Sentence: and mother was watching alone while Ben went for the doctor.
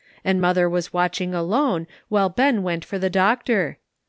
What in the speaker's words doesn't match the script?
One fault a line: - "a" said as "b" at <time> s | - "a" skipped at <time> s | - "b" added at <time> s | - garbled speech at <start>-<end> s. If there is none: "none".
none